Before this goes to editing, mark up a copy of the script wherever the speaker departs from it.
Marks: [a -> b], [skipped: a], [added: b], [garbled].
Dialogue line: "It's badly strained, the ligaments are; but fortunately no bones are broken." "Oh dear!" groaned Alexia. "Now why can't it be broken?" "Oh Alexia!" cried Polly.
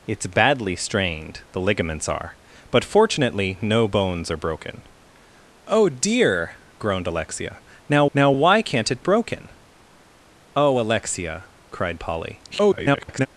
"It's badly strained, the ligaments are; but fortunately no bones are broken." "Oh dear!" groaned Alexia. "Now [added: now] why can't it [skipped: be] broken?" "Oh Alexia!" cried Polly. [garbled]